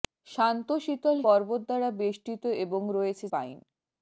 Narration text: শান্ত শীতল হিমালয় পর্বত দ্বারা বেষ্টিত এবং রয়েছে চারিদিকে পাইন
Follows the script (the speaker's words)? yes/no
no